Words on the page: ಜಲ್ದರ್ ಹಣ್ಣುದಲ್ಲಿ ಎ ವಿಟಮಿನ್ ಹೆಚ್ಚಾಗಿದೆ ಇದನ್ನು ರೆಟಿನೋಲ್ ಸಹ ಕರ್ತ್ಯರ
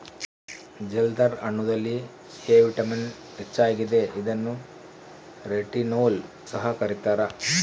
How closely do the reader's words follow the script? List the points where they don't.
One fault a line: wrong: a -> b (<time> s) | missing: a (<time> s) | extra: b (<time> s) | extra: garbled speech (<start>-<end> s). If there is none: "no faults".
no faults